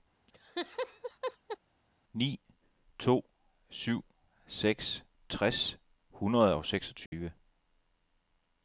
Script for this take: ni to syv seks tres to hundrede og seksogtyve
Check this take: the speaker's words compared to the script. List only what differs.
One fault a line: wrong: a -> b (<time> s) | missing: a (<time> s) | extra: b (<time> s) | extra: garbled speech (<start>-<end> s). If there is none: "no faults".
missing: to (5.8 s)